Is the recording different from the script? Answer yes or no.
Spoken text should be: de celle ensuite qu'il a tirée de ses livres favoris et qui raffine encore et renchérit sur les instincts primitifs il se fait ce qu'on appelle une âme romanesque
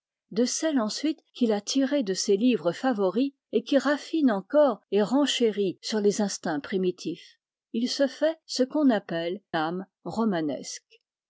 yes